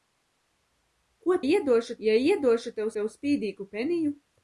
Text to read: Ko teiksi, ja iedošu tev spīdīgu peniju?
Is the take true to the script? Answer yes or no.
no